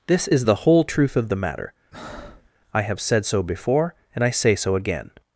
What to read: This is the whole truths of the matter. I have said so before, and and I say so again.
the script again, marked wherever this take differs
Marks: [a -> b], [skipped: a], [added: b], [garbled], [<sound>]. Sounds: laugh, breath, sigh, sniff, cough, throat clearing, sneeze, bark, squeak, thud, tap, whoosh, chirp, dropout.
This is the whole [truths -> truth] of the matter. [breath] I have said so before, and [skipped: and] I say so again.